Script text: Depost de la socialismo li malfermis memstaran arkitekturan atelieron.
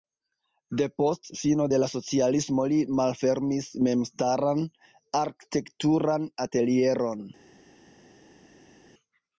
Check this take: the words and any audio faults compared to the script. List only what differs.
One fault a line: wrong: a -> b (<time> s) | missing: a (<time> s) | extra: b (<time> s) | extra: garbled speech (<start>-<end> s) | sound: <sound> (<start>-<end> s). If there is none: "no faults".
extra: fino (1.4 s)